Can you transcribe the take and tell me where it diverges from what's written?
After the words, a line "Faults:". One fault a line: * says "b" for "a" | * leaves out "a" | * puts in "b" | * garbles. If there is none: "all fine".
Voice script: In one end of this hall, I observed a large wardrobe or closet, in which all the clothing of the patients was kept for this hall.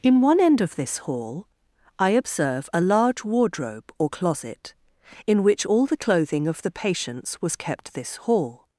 In one end of this hall, I observe a large wardrobe or closet, in which all the clothing of the patients was kept this hall.
Faults:
* says "observe" for "observed"
* leaves out "for"